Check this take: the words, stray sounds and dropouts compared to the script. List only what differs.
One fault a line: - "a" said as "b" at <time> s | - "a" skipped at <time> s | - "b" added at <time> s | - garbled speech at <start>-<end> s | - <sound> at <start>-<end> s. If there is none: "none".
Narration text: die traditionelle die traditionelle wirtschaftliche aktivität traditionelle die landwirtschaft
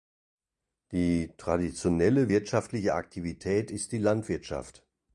- "die traditionelle" skipped at 2.3 s
- "traditionelle" said as "ist" at 3.7 s